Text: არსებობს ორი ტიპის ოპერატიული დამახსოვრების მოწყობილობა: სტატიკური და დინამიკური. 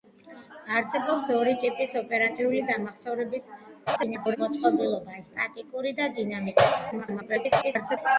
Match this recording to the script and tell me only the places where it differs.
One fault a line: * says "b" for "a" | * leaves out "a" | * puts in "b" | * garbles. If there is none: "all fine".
* garbles
* garbles